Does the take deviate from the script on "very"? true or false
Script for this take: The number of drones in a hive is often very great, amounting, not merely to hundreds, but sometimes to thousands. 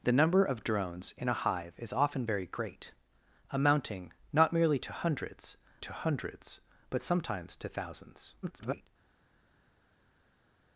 false